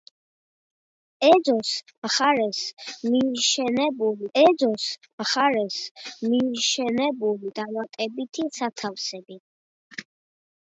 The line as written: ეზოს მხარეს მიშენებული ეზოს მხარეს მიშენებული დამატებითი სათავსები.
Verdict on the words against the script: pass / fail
pass